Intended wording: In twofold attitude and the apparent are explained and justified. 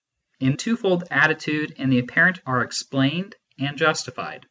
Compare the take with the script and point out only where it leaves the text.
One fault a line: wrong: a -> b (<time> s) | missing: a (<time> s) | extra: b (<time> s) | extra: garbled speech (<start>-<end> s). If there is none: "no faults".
no faults